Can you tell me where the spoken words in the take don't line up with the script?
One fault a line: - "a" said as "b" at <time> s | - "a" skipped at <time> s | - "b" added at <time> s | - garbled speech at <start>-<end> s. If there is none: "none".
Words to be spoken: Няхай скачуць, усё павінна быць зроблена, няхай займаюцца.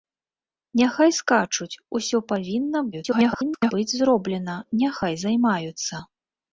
- garbled speech at 2.9-3.7 s